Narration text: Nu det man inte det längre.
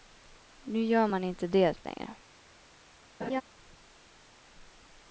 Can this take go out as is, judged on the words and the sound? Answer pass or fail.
fail